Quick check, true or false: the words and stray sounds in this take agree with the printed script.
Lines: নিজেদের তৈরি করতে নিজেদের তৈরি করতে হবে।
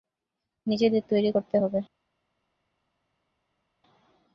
false